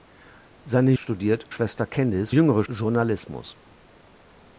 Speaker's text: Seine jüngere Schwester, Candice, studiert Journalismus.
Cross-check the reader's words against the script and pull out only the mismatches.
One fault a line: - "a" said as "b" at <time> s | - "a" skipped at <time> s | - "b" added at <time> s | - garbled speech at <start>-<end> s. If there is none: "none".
- "jüngere" said as "studiert" at 1.0 s
- "studiert" said as "jüngere" at 2.3 s